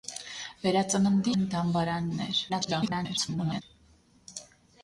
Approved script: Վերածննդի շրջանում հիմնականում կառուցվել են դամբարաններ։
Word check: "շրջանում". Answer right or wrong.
wrong